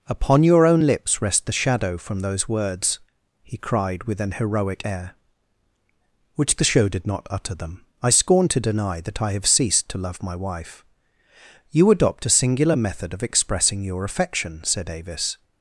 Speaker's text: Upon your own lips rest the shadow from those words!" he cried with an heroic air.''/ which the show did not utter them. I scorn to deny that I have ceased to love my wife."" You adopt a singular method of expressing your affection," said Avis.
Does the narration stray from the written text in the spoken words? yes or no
no